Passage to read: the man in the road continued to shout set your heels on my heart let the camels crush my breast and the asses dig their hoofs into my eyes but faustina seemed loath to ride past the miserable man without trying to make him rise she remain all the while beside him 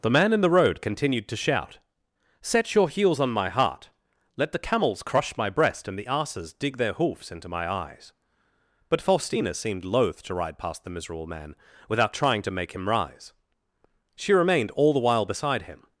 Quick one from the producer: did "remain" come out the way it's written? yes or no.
no